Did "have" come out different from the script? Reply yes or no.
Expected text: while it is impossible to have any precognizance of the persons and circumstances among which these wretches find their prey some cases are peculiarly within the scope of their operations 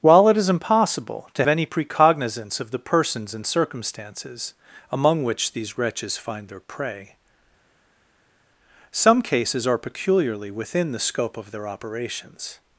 yes